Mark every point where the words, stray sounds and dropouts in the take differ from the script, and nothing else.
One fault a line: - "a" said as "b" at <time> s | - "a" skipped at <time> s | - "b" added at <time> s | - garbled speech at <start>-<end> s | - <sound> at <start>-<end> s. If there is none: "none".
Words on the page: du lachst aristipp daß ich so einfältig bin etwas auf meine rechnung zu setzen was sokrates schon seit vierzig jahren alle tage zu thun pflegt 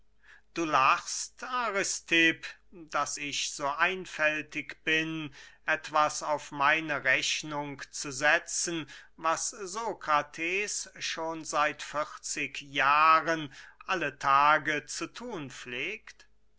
none